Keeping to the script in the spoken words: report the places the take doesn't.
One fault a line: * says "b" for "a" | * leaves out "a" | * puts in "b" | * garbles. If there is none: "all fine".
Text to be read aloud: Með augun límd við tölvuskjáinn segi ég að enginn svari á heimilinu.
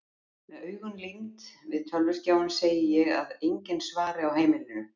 all fine